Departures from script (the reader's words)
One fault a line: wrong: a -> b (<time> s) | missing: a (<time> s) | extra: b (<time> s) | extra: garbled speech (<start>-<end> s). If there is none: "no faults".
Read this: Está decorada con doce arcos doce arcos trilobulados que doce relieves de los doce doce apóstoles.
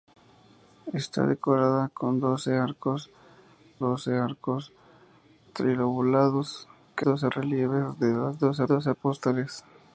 no faults